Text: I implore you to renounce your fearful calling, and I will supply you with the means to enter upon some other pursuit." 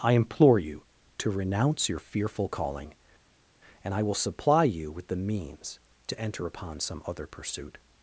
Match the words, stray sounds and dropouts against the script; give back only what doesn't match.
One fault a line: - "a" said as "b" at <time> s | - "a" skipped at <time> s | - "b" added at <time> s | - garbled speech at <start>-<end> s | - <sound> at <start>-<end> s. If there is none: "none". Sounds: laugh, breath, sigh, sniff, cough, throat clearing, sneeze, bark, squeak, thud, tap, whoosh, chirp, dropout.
none